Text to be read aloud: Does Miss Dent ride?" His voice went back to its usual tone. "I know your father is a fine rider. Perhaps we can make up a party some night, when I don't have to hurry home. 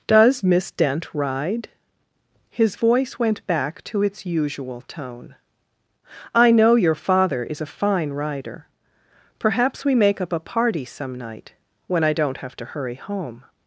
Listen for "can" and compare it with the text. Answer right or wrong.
wrong